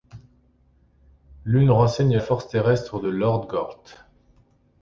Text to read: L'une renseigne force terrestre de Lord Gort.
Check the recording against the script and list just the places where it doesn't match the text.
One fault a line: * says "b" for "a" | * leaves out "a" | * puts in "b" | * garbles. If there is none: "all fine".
all fine